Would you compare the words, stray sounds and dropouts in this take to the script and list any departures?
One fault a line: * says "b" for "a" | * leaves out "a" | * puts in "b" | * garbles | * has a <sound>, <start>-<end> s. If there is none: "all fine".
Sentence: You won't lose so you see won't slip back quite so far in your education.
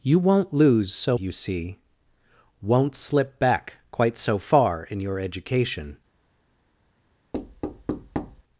* has a thud, 7.3-8.4 s